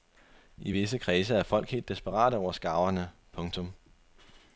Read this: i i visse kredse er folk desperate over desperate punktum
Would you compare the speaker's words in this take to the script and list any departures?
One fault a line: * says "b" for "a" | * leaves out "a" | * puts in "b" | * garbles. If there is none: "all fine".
* leaves out "i"
* puts in "helt"
* says "skarverne" for "desperate"